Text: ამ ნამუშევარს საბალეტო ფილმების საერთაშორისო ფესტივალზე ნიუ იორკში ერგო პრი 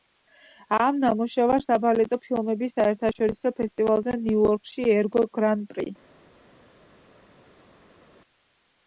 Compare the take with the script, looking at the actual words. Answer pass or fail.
fail